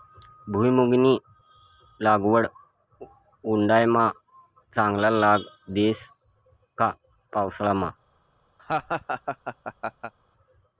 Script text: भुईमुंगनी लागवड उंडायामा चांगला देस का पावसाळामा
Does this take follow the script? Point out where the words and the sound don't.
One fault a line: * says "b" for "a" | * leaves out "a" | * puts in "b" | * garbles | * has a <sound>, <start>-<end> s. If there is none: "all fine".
* puts in "लाग"
* has a laugh, 8.6-10.1 s